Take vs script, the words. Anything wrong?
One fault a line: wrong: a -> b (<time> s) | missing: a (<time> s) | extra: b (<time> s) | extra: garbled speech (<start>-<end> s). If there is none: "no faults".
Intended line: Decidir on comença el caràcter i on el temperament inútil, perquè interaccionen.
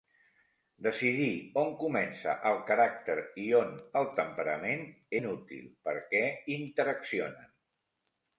no faults